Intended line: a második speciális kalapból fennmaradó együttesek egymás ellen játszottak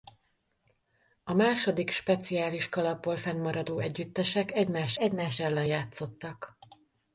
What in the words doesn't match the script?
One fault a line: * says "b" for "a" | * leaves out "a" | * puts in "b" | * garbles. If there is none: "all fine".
* puts in "egymás"